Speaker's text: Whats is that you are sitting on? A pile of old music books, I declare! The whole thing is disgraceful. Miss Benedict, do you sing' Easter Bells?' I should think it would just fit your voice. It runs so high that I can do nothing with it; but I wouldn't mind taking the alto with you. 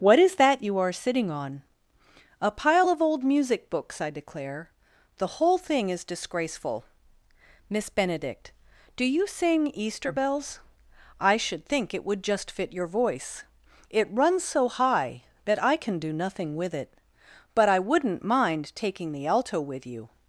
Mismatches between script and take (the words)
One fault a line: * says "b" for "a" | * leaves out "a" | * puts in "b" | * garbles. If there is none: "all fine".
* says "What" for "Whats"